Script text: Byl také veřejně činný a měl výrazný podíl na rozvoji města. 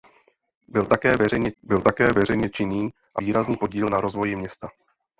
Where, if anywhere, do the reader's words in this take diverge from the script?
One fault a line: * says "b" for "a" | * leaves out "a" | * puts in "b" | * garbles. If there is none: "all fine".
* puts in "byl také veřejně"
* leaves out "měl"